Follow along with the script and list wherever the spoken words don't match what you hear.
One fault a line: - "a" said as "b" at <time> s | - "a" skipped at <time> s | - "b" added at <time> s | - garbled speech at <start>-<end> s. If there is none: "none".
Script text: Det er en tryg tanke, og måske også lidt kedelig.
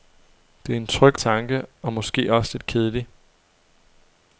none